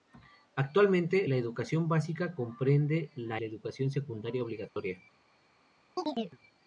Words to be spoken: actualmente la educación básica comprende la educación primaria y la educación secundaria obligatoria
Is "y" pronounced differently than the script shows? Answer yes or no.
yes